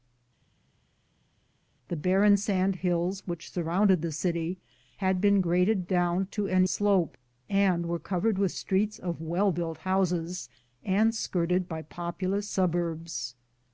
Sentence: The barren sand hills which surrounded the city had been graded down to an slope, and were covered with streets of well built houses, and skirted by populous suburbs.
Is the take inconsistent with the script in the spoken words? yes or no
no